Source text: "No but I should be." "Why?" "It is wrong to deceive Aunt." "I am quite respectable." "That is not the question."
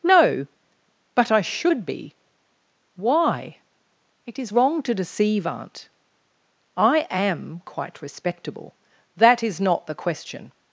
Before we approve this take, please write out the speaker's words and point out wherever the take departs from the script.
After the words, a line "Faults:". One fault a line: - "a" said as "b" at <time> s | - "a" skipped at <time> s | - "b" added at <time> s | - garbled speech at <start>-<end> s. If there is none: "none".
"No but I should be." "Why?" "It is wrong to deceive Aunt." "I am quite respectable." "That is not the question."
Faults:
none